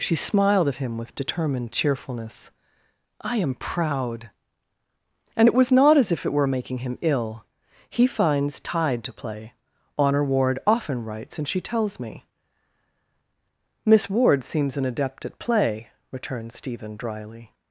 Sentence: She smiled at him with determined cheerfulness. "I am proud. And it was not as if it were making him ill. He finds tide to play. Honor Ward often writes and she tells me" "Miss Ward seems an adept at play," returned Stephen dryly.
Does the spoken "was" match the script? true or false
true